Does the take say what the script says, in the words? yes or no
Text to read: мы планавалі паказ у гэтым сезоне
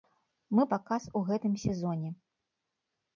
no